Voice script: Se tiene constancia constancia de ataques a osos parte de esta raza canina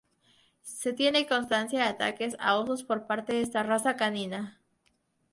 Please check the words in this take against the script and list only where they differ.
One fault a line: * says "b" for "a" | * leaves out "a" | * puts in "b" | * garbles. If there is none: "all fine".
* leaves out "constancia"
* puts in "por"